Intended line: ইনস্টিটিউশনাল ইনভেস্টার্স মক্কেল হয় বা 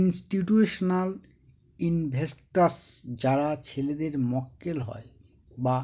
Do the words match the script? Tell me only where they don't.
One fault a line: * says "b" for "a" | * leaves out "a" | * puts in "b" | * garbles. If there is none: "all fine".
* puts in "যারা ছেলেদের"